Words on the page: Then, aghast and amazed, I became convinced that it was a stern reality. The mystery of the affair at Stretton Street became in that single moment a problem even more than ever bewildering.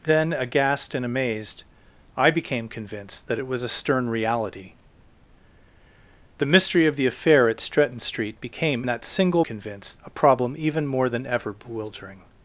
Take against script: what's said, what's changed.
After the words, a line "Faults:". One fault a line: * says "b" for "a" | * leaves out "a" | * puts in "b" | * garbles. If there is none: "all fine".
Then, aghast and amazed, I became convinced that it was a stern reality. The mystery of the affair at Stretton Street became that single convinced a problem even more than ever bewildering.
Faults:
* leaves out "in"
* says "convinced" for "moment"